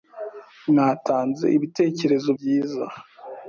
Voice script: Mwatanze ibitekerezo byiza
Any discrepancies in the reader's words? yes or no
no